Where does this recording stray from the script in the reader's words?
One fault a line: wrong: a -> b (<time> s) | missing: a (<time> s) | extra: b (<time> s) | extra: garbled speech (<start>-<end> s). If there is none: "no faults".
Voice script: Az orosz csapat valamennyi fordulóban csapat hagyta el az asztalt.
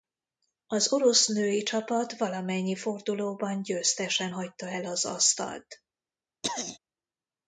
extra: női (1.3 s)
wrong: csapat -> győztesen (3.6 s)